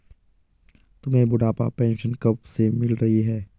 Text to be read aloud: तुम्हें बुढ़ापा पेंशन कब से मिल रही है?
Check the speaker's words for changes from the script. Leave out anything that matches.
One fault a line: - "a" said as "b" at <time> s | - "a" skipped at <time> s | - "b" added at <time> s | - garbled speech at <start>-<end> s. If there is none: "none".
none